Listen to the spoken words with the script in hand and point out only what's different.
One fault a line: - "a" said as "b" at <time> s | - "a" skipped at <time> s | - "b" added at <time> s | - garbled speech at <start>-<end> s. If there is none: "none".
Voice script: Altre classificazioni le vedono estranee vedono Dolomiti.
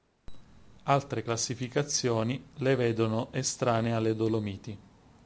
- "vedono" said as "alle" at 3.9 s